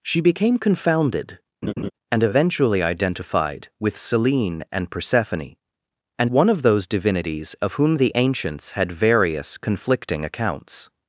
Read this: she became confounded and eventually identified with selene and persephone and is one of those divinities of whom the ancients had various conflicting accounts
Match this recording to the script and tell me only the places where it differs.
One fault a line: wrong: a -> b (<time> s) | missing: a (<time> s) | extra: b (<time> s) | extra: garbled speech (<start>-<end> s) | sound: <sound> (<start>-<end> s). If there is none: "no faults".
sound: laugh (1.6-1.9 s)
missing: is (6.3 s)